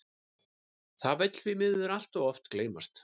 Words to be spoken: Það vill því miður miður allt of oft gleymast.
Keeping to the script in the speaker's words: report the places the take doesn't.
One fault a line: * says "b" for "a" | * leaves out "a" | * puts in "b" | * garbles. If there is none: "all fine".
* leaves out "miður"